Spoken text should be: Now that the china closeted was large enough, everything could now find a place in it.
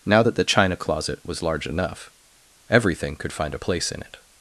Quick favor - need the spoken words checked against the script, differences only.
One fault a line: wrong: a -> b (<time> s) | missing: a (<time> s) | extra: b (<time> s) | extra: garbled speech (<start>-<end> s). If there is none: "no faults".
wrong: closeted -> closet (0.8 s)
missing: now (3.3 s)